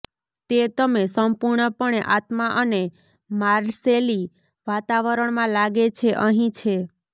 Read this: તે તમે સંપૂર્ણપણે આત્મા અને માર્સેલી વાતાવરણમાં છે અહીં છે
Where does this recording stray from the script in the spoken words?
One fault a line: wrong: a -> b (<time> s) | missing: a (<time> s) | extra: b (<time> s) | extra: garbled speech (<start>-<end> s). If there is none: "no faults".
extra: લાગે (5.5 s)